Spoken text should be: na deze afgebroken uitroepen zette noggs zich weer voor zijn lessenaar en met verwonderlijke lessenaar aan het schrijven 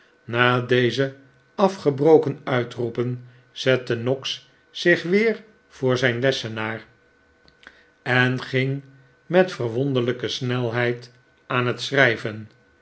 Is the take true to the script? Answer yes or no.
no